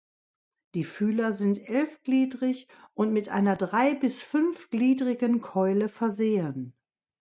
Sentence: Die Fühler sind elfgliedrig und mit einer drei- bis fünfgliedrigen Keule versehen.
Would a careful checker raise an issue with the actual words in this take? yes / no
no